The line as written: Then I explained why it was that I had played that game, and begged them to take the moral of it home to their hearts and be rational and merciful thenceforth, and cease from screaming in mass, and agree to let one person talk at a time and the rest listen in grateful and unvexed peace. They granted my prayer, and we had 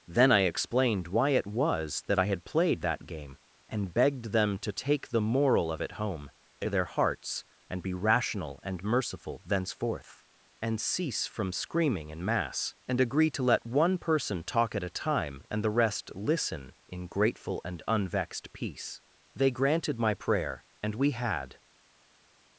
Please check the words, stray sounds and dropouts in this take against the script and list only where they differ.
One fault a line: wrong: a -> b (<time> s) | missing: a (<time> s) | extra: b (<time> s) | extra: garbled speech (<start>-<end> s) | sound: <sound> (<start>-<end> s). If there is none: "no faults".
no faults